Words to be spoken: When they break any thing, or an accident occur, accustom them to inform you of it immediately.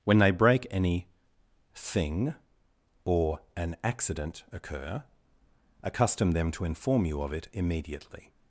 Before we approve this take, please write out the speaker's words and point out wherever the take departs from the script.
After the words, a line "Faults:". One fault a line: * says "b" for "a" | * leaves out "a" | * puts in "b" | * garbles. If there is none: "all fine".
When they break any thing, or an accident occur, accustom them to inform you of it immediately.
Faults:
all fine